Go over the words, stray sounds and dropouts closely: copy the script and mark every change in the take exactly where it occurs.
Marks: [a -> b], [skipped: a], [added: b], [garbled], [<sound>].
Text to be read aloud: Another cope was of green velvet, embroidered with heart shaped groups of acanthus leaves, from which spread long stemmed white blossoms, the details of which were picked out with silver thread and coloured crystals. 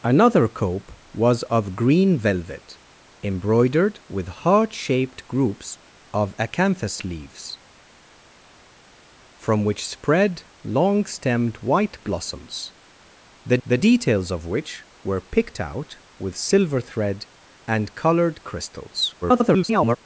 Another cope was of green velvet, embroidered with heart shaped groups of acanthus leaves, from which spread long stemmed white blossoms, the [added: the] details of which were picked out with silver thread and coloured crystals. [garbled]